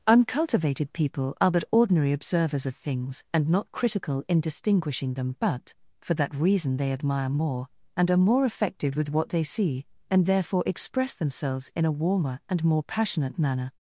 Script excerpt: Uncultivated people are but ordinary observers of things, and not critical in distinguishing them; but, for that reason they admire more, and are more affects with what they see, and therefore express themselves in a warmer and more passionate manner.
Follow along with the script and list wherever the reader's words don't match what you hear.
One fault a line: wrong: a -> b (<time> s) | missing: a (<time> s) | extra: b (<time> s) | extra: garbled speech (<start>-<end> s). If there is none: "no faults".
wrong: affects -> affected (8.4 s)